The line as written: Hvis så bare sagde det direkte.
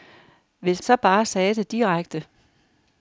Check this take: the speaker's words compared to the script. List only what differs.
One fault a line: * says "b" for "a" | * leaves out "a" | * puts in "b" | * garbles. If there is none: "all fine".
all fine